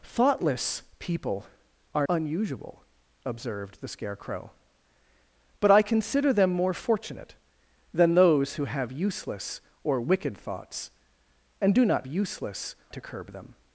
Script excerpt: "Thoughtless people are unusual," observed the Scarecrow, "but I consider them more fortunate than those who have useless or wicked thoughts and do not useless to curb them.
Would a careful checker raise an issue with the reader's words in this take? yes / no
no